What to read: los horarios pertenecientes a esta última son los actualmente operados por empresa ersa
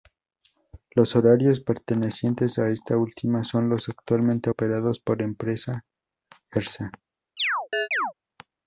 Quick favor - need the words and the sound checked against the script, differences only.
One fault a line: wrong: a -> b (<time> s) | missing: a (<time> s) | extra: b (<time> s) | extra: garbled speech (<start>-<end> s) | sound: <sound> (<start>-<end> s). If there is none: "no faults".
sound: chirp (7.4-8.1 s)